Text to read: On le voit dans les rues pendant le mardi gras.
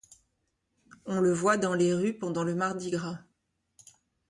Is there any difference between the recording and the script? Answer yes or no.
no